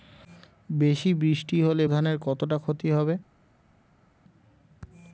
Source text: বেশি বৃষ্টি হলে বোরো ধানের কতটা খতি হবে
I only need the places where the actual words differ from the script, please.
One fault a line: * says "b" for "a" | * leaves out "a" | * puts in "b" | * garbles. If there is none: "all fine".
* leaves out "বোরো"